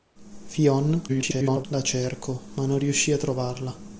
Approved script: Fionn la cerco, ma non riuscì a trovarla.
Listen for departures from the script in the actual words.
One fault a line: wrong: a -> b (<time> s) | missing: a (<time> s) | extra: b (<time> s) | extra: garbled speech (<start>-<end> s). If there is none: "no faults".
extra: garbled speech (1.1-1.7 s)